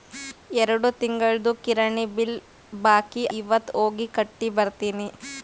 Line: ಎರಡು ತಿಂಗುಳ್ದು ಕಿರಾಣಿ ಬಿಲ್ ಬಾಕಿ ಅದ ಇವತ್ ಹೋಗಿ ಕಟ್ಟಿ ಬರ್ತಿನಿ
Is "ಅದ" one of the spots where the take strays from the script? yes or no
yes